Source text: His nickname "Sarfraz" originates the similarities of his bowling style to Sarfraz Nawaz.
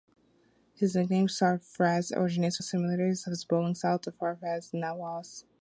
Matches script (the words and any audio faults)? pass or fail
pass